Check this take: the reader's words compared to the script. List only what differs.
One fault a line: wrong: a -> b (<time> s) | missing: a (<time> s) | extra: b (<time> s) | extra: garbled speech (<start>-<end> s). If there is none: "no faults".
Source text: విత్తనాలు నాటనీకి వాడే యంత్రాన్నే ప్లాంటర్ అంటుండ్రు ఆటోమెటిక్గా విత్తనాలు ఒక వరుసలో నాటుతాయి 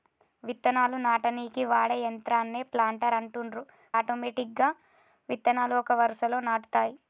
no faults